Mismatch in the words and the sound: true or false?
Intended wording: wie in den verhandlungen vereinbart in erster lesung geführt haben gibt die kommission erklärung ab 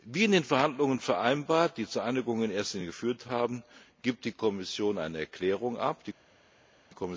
true